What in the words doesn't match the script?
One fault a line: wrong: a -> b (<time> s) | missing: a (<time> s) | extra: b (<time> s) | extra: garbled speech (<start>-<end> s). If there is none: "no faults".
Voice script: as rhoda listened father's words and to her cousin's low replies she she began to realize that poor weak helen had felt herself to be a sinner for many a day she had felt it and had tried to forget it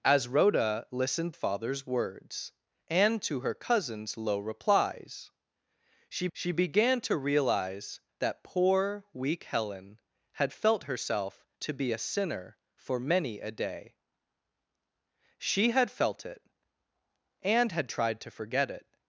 no faults